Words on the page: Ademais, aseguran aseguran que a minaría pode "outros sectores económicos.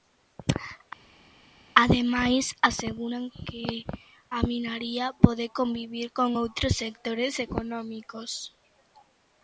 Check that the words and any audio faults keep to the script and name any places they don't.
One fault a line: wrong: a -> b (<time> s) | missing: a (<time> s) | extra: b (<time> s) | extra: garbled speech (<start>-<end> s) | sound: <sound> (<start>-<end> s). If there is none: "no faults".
missing: aseguran (3.2 s)
extra: convivir con (5.6 s)